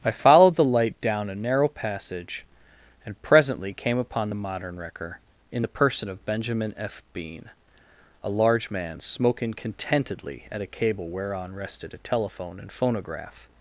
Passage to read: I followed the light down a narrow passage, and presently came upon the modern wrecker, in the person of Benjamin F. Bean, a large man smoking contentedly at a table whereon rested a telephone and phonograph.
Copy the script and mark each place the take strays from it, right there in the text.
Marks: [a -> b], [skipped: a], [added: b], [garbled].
I followed the light down a narrow passage, and presently came upon the modern wrecker, in the person of Benjamin F. Bean, a large man smoking contentedly at a [table -> cable] whereon rested a telephone and phonograph.